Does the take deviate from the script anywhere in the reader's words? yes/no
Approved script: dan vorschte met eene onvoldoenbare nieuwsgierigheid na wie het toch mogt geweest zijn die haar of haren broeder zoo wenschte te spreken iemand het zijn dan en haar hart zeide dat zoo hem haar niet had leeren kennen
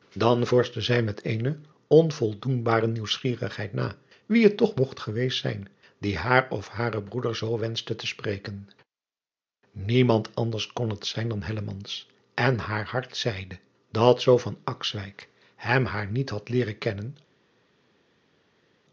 yes